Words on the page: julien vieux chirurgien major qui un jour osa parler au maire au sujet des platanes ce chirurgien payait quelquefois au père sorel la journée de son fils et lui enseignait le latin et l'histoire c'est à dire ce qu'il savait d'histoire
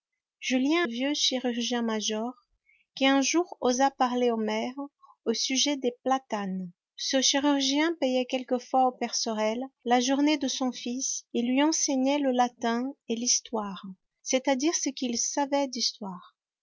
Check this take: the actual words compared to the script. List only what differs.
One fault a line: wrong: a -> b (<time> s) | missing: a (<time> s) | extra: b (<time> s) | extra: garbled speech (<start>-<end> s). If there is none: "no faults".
no faults